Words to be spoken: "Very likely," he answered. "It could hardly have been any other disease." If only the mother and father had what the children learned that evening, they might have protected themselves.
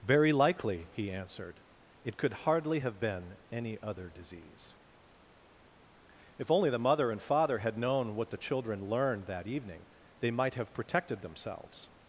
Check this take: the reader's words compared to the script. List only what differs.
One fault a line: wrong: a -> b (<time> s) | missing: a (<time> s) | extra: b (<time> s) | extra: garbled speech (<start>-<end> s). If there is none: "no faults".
extra: known (7.8 s)